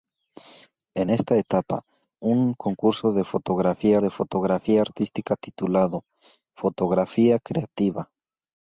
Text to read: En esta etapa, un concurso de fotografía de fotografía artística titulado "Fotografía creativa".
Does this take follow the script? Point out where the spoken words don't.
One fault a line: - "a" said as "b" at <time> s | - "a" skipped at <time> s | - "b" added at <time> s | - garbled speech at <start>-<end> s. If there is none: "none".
none